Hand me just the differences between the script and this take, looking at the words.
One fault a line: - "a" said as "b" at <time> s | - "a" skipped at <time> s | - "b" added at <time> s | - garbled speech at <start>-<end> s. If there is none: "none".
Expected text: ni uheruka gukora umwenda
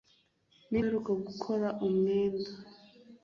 none